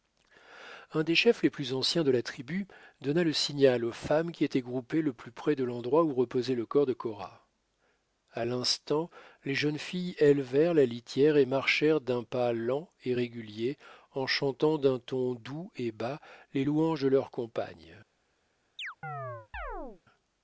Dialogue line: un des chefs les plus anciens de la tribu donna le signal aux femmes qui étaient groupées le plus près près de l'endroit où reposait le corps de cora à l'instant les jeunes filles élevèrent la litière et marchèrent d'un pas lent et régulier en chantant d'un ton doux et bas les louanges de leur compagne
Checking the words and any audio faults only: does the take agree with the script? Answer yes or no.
no